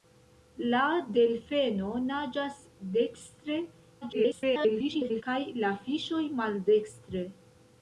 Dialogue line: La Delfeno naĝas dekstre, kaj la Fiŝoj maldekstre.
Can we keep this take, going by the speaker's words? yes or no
no